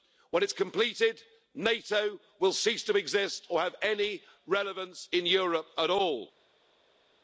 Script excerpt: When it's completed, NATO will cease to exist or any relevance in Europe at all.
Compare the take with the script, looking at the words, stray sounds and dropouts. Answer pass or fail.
fail